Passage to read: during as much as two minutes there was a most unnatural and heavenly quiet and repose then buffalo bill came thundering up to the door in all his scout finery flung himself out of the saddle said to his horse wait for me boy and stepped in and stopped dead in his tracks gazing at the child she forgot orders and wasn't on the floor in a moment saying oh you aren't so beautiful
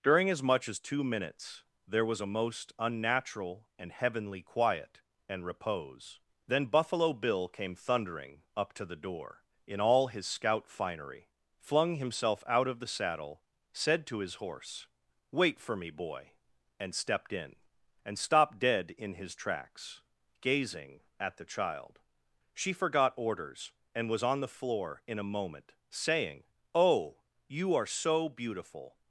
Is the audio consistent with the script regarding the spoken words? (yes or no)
no